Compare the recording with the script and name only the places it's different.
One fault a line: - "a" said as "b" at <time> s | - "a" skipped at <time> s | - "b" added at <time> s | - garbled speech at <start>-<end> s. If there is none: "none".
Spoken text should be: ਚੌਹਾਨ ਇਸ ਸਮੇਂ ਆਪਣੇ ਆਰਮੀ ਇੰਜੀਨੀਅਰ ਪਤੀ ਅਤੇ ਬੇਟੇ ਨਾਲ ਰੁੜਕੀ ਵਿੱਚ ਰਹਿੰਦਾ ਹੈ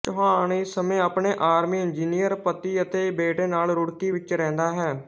none